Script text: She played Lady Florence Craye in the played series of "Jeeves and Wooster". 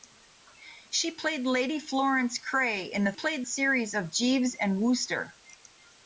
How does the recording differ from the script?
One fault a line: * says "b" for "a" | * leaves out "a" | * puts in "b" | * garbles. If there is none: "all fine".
all fine